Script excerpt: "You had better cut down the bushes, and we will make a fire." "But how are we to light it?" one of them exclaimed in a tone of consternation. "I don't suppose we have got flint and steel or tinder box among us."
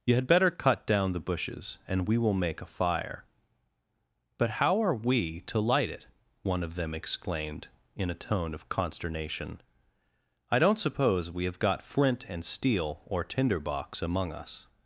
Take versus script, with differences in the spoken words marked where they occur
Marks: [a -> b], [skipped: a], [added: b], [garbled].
"You had better cut down the bushes, and we will make a fire." "But how are we to light it?" one of them exclaimed in a tone of consternation. "I don't suppose we have got flint and steel or tinder box among us."